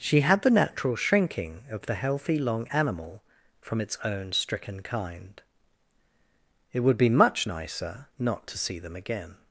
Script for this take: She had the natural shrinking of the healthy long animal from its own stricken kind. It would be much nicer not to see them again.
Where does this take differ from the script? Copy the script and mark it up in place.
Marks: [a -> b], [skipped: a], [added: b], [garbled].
She had the natural shrinking of the healthy long animal from its own stricken kind. It would be much nicer not to see them again.